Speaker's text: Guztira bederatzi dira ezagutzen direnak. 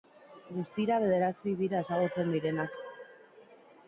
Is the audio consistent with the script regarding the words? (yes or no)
yes